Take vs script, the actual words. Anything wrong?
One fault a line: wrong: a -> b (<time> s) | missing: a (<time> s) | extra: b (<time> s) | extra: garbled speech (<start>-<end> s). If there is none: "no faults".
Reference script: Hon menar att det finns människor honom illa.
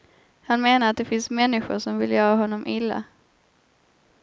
wrong: Hon -> Han (0.4 s)
extra: som vill göra (1.8 s)